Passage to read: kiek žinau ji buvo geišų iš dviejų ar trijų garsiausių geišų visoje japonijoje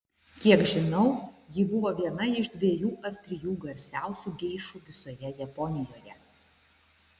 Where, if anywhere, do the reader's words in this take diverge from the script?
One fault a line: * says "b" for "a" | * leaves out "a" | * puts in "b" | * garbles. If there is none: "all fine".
* says "viena" for "geišų"